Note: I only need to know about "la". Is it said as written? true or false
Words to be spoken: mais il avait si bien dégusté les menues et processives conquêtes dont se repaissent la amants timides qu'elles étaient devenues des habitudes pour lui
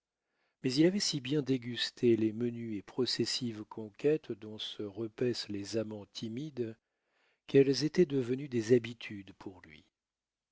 false